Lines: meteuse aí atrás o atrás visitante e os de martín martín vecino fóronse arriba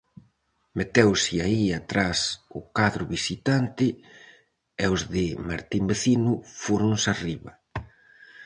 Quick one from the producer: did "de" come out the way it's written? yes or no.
yes